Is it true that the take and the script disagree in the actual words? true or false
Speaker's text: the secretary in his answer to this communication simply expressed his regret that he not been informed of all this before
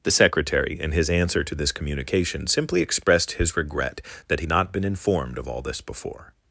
false